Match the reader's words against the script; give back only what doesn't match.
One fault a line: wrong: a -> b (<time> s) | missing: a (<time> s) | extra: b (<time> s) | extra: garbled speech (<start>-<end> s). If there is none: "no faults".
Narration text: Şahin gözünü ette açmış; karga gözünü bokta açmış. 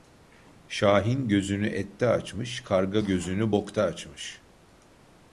no faults